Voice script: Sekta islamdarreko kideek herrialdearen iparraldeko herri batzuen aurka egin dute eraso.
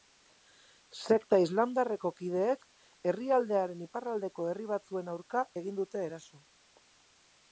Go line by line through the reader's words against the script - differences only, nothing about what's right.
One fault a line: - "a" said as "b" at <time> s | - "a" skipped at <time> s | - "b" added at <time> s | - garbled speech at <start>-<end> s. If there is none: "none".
none